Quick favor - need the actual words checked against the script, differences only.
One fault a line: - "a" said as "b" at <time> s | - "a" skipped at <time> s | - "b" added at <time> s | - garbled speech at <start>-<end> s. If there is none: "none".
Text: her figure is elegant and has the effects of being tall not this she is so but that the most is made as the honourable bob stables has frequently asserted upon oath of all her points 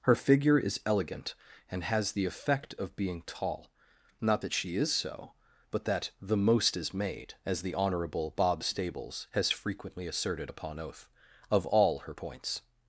- "effects" said as "effect" at 2.2 s
- "this" said as "that" at 4.4 s